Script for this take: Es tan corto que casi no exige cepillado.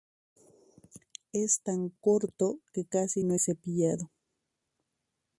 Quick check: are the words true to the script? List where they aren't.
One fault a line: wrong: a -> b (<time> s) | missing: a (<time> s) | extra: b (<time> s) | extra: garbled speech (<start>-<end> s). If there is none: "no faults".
missing: exige (3.3 s)